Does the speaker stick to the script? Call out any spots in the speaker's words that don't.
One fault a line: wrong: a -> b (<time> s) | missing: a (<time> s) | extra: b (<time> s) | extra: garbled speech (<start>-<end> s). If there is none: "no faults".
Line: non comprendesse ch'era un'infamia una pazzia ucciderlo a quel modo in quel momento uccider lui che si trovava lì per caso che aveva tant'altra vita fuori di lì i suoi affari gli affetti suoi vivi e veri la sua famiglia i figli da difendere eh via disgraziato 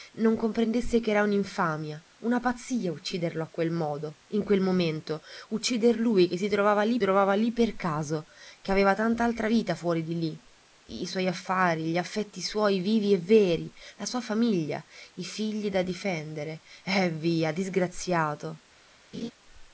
extra: trovava lì (7.0 s)